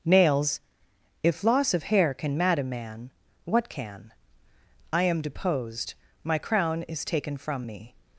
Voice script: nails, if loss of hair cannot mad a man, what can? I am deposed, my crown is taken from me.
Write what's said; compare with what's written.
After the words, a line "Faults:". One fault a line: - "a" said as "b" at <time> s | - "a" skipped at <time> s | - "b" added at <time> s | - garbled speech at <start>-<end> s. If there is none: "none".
nails, if loss of hair can mad a man, what can? I am deposed, my crown is taken from me.
Faults:
- "cannot" said as "can" at 2.1 s